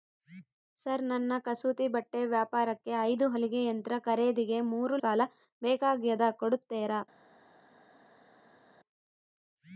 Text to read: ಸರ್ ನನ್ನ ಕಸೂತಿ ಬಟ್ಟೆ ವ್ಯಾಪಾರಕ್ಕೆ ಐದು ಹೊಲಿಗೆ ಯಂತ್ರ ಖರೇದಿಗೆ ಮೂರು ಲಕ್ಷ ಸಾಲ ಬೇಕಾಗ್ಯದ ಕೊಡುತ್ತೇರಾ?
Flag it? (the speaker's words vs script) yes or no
yes